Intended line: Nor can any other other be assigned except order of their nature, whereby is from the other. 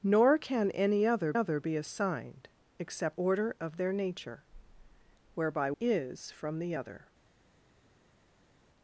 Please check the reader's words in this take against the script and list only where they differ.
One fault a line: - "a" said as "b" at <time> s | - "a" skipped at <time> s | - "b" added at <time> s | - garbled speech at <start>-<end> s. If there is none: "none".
none